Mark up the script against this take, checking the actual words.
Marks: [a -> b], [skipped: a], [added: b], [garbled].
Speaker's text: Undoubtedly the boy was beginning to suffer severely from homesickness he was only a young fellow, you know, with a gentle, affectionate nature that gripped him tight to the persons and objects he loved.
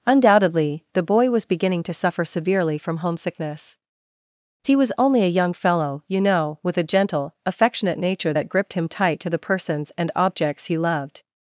Undoubtedly the boy was beginning to suffer severely from homesickness he was only a young fellow, you know, with a gentle, affectionate nature that gripped him tight to the persons and objects he loved.